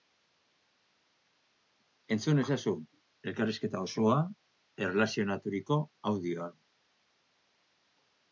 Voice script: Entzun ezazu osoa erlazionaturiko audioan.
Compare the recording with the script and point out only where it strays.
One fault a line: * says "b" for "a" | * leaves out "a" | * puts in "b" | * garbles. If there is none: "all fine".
* puts in "elkarrizketa"